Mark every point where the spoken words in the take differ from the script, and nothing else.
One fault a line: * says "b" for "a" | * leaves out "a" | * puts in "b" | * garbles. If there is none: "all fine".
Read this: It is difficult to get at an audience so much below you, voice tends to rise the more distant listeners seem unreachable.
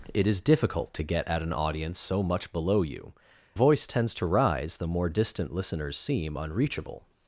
all fine